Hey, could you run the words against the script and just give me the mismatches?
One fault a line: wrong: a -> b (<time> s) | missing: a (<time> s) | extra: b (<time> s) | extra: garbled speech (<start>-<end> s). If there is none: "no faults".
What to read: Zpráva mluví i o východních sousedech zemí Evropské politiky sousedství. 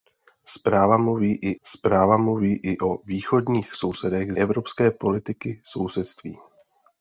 extra: zpráva mluví i (1.6 s)
missing: zemí (4.3 s)